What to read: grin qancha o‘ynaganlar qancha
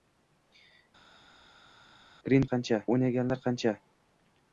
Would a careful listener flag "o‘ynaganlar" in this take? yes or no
no